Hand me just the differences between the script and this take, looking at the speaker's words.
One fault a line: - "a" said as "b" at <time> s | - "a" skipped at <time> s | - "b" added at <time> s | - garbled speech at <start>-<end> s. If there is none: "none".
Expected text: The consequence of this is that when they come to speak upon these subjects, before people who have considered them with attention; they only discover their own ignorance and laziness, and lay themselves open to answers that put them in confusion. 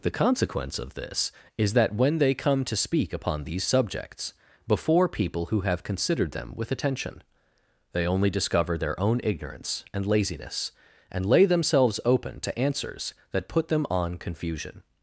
- "in" said as "on" at 13.9 s